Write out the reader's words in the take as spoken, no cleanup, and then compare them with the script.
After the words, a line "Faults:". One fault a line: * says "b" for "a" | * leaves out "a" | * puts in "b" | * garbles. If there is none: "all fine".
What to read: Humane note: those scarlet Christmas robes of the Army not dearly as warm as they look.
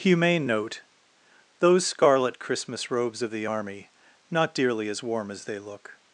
Humane note: those scarlet Christmas robes of the Army not dearly as warm as they look.
Faults:
all fine